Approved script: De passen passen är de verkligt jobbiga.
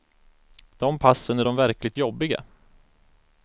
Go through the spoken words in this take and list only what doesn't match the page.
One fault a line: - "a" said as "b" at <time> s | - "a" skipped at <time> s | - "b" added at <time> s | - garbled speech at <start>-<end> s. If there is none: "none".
- "passen" skipped at 1.4 s